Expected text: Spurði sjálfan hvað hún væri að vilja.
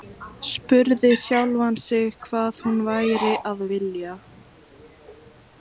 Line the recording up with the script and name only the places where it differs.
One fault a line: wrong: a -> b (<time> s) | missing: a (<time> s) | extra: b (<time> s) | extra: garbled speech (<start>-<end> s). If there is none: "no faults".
extra: sig (1.8 s)